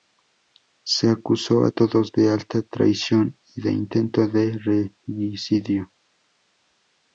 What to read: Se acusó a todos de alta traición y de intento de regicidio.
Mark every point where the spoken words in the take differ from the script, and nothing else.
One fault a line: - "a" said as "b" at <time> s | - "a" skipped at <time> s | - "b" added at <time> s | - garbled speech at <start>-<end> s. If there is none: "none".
none